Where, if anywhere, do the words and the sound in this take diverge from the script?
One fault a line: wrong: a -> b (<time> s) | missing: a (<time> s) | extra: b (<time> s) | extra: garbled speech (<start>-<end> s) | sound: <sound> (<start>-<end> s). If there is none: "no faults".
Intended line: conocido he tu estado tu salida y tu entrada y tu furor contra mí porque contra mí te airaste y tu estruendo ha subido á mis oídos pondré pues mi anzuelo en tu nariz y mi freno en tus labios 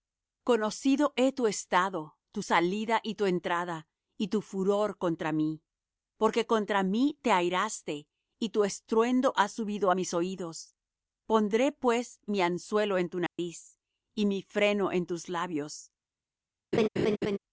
sound: dropout (13.3-13.4 s)
sound: laugh (16.7-17.4 s)